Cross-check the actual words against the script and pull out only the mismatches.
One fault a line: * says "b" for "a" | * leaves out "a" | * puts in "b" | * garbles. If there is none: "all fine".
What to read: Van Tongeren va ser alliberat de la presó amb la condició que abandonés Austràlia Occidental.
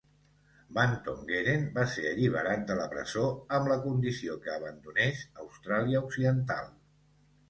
all fine